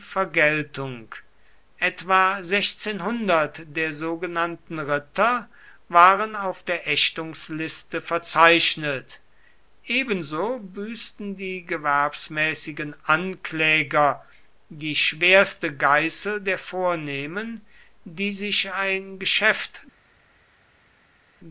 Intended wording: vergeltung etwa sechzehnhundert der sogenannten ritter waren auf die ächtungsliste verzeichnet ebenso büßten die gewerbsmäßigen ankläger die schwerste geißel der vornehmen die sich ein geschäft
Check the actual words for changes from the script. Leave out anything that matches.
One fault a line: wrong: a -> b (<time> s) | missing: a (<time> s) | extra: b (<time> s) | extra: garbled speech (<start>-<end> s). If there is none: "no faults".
wrong: die -> der (6.6 s)